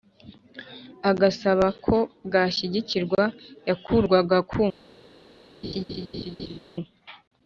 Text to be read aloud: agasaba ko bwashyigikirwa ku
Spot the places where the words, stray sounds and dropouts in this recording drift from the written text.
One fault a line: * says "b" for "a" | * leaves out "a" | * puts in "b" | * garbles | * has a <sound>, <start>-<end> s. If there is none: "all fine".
* puts in "yakurwaga"
* has a laugh, 5.6-6.6 s